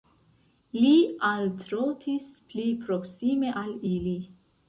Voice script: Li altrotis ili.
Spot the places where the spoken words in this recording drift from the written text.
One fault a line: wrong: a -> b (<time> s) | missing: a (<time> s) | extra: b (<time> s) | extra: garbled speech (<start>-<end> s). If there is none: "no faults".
extra: pli proksime al (2.5 s)